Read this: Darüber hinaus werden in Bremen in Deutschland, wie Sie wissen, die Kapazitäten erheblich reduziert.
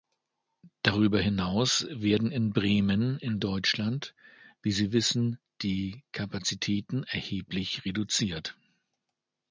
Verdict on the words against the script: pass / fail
pass